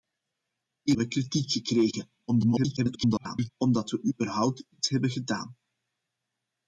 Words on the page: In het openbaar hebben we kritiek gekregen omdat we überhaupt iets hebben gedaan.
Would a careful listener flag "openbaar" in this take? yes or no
yes